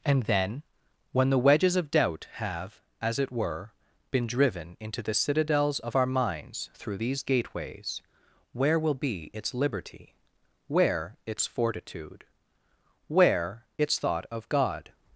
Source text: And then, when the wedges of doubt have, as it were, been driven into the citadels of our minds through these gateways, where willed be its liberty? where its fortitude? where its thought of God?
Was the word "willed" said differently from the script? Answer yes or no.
yes